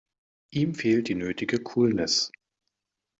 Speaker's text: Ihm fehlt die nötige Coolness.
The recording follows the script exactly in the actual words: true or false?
true